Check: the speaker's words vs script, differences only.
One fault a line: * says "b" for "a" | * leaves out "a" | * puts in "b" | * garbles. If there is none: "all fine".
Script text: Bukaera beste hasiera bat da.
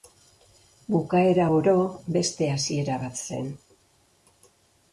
* puts in "oro"
* says "zen" for "da"